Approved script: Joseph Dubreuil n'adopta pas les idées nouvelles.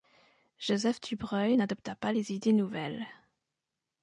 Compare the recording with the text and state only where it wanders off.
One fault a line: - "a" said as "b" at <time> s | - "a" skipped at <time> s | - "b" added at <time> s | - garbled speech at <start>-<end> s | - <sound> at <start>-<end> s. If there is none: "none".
none